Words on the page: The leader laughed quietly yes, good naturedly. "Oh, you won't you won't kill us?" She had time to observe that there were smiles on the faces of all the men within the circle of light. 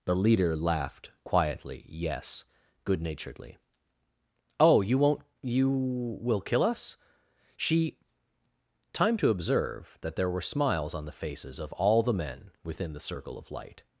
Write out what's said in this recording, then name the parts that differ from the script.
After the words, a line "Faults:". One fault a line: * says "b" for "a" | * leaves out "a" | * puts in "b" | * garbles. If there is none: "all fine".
The leader laughed quietly yes, good naturedly. "Oh, you won't you will kill us?" She time to observe that there were smiles on the faces of all the men within the circle of light.
Faults:
* says "will" for "won't"
* leaves out "had"